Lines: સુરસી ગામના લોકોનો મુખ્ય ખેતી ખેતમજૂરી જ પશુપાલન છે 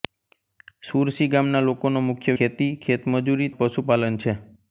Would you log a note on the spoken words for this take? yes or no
no